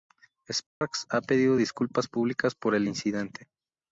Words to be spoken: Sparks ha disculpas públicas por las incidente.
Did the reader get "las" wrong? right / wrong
wrong